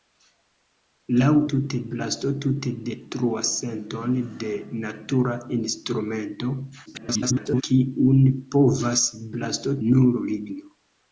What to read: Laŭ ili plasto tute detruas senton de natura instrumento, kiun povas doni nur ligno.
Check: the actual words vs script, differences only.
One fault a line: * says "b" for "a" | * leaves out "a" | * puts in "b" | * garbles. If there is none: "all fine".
* says "tute" for "ili"
* garbles
* says "plasto" for "doni"